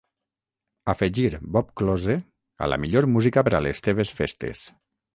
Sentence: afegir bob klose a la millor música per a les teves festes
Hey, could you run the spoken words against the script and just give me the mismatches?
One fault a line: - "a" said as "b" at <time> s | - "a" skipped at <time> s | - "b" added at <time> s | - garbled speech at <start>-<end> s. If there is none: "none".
none